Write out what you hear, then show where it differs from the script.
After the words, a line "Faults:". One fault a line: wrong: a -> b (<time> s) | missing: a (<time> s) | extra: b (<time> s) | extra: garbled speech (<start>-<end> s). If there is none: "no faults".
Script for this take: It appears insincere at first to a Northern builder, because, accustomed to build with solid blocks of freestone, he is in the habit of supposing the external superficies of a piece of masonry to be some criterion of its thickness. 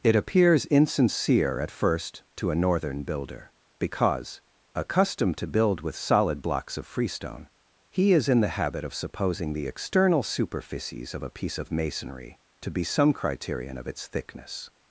It appears insincere at first to a Northern builder, because, accustomed to build with solid blocks of freestone, he is in the habit of supposing the external superficies of a piece of masonry to be some criterion of its thickness.
Faults:
no faults